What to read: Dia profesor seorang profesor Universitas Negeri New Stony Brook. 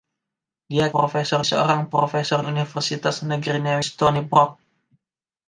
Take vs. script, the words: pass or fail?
pass